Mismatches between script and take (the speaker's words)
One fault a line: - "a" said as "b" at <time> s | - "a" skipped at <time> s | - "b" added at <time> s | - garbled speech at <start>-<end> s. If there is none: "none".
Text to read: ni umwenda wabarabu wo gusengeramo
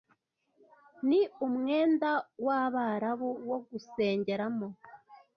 none